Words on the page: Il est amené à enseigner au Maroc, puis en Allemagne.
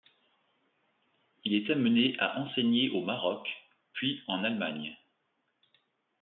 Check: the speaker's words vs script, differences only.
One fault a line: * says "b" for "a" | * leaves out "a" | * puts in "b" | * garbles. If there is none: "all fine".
all fine